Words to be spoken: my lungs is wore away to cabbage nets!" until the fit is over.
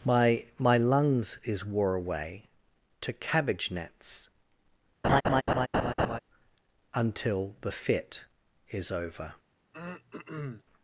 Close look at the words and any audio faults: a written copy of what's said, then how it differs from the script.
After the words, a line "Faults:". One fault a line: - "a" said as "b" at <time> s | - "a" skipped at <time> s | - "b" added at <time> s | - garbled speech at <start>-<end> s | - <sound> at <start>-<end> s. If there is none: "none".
my my lungs is wore away to cabbage nets!" until the fit is over.
Faults:
- "my" added at 0.6 s
- laugh at 5.0-6.2 s
- throat clearing at 9.7-10.6 s